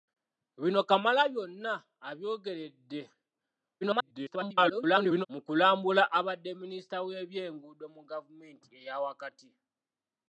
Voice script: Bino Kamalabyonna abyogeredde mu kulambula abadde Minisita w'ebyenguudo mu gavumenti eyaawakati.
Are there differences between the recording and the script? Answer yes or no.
yes